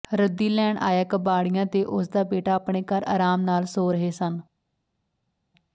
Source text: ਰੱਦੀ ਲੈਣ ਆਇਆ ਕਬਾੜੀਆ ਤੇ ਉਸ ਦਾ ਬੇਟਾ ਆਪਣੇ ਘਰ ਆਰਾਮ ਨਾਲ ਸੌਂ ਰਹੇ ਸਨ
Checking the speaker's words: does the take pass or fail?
pass